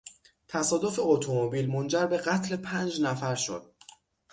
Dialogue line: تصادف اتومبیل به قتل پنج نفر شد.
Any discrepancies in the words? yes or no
yes